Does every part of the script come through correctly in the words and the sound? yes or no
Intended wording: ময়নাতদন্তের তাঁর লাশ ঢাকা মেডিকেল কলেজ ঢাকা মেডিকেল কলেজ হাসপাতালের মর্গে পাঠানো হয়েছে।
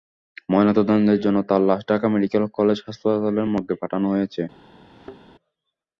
no